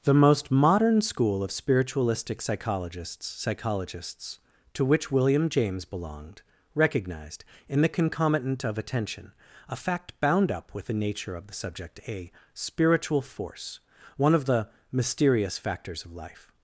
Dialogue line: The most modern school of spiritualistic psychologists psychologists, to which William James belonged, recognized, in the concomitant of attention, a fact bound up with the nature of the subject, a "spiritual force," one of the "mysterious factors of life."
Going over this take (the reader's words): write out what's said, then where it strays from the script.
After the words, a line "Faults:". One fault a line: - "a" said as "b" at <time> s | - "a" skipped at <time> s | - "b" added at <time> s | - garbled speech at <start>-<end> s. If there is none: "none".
The most modern school of spiritualistic psychologists psychologists, to which William James belonged, recognized, in the concomitant of attention, a fact bound up with the nature of the subject, a "spiritual force," one of the "mysterious factors of life."
Faults:
none